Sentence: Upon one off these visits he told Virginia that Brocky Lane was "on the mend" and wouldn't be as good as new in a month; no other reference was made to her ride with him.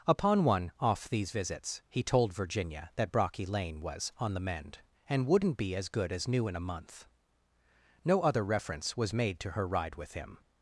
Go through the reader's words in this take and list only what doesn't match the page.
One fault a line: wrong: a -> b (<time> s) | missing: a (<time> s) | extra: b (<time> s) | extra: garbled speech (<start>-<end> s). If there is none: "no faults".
no faults